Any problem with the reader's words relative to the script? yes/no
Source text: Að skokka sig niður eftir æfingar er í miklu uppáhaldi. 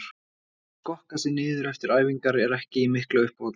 yes